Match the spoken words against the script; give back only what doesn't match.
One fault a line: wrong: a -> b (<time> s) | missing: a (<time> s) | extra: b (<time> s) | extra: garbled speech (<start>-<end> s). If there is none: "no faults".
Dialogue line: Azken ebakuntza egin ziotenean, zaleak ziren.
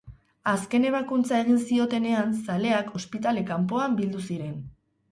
extra: ospitale kanpoan bildu (3.0 s)